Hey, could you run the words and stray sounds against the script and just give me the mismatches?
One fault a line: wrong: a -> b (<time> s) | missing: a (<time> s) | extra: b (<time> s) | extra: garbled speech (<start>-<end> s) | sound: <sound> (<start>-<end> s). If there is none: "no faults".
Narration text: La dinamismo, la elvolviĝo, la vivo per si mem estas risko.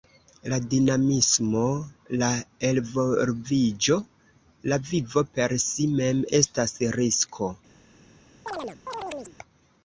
sound: chirp (8.5-9.4 s)